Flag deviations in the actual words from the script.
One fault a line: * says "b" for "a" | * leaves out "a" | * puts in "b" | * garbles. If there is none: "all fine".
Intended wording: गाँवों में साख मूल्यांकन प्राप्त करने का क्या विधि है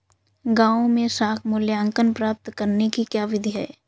* says "की" for "का"